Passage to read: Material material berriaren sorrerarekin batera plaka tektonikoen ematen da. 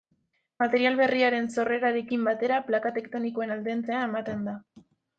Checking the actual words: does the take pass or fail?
fail